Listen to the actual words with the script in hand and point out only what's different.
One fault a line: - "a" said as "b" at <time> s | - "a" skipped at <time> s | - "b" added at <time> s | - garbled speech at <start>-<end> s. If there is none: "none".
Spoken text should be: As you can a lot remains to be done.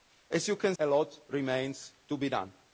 none